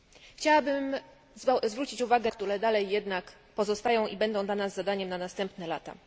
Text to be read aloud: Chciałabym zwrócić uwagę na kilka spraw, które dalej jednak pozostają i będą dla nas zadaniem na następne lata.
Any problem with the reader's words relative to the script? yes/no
yes